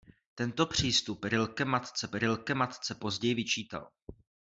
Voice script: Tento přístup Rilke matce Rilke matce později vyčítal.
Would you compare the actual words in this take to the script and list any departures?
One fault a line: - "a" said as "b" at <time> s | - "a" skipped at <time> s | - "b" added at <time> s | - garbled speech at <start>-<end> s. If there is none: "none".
none